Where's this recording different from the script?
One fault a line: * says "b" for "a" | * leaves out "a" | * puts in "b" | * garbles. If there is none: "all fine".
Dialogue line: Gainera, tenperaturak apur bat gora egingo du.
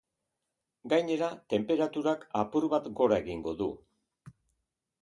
all fine